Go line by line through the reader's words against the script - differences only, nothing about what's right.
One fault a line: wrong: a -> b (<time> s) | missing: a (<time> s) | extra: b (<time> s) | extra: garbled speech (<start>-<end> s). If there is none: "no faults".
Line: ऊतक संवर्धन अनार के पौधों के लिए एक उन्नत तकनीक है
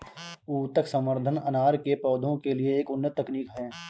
no faults